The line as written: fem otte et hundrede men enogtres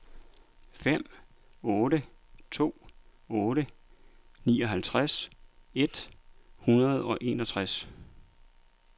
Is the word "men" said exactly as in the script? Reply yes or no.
no